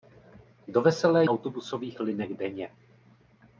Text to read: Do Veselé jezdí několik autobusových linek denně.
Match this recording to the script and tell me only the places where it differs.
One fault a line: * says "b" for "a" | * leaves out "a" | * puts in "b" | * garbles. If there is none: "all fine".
* leaves out "jezdí několik"